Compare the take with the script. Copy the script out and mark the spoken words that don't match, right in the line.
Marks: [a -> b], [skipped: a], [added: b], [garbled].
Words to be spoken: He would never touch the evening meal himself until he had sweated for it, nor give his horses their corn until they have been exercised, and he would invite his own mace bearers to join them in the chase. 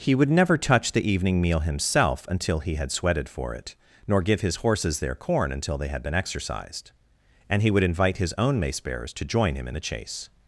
He would never touch the evening meal himself until he had sweated for it, nor give his horses their corn until they [have -> had] been exercised, and he would invite his own mace bearers to join [them -> him] in the chase.